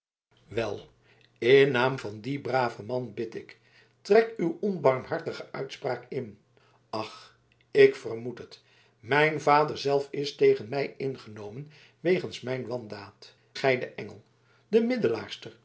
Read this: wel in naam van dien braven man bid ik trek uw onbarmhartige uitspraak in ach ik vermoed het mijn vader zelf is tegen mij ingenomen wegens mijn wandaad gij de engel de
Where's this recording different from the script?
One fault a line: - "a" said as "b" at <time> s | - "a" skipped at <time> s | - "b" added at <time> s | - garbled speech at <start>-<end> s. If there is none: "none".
none